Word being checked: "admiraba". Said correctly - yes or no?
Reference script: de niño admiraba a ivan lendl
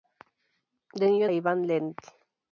no